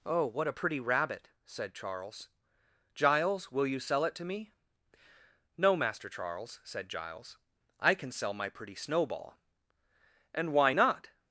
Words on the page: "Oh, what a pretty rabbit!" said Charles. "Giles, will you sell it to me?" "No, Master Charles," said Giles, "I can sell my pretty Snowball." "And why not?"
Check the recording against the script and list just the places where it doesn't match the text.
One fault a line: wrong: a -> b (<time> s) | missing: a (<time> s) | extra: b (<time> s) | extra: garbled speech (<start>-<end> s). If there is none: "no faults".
no faults